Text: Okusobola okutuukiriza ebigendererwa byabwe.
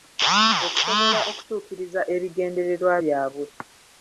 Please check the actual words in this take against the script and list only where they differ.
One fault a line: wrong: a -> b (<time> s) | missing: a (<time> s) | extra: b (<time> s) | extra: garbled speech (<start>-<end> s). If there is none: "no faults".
no faults